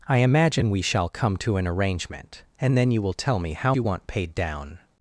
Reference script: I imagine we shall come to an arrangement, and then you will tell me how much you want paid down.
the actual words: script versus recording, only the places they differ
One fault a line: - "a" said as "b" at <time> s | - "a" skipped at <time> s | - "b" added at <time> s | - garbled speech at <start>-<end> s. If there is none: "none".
- "much" skipped at 3.8 s